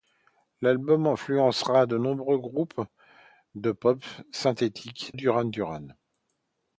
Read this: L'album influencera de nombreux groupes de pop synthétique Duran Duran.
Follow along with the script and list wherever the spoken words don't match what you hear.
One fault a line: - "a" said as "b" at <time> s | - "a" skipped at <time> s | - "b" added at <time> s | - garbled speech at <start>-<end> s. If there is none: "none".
none